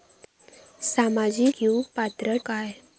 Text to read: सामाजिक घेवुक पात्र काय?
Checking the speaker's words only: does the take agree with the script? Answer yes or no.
yes